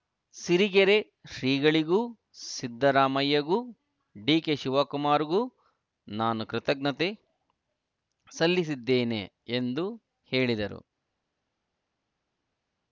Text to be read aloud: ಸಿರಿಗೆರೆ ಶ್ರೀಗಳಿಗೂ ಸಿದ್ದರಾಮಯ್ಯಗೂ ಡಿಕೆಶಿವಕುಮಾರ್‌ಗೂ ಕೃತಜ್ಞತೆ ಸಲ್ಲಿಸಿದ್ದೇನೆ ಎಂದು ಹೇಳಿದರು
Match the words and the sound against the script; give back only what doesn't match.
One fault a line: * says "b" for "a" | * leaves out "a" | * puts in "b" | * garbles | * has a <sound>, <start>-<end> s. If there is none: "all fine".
* puts in "ನಾನು"